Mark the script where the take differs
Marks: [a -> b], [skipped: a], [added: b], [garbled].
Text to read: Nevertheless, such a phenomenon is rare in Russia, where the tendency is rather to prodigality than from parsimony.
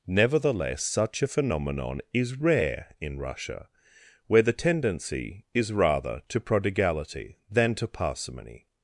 Nevertheless, such a phenomenon is rare in Russia, where the tendency is rather to prodigality than [from -> to] parsimony.